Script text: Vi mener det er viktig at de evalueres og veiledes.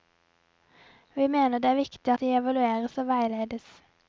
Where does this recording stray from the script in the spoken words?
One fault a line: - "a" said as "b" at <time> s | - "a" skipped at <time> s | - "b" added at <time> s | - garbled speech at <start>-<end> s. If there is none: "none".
- "at" skipped at 2.1 s